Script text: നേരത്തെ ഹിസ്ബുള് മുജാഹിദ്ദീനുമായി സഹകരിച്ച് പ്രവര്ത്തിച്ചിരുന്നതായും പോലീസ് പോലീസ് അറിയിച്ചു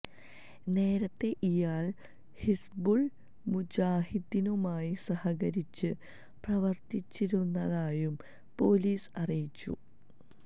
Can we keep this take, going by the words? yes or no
no